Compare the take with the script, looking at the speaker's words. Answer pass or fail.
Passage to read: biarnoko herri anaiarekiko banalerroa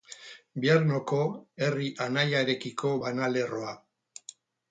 pass